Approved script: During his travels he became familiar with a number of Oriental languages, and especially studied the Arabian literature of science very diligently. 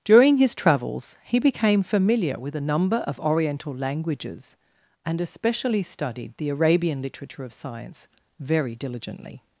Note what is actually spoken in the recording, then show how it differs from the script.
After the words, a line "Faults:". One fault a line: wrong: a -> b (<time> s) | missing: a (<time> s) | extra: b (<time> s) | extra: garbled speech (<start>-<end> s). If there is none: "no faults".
During his travels he became familiar with a number of Oriental languages, and especially studied the Arabian literature of science very diligently.
Faults:
no faults